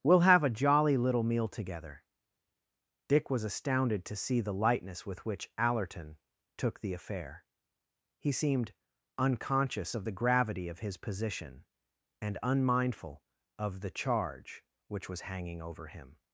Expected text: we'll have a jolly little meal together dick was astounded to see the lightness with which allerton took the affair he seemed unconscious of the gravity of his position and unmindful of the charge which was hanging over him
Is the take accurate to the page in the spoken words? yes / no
yes